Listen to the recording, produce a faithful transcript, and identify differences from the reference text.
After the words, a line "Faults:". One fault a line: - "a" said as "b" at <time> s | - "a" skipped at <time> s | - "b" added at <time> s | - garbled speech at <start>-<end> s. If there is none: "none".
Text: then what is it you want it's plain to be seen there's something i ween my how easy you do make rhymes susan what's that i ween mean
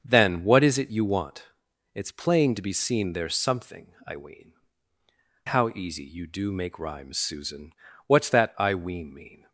then what is it you want it's plain to be seen there's something i ween how easy you do make rhymes susan what's that i ween mean
Faults:
- "my" skipped at 4.5 s